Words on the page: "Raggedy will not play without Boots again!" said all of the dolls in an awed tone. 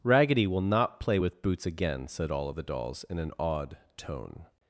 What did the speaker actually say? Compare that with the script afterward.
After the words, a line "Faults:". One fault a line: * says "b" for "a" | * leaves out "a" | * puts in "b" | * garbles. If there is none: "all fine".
"Raggedy will not play with Boots again!" said all of the dolls in an awed tone.
Faults:
* says "with" for "without"